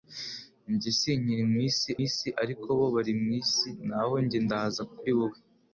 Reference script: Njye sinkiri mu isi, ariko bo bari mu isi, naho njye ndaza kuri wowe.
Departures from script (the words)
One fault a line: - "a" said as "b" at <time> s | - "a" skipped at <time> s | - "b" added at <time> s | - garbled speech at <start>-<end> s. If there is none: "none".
- "isi" added at 2.1 s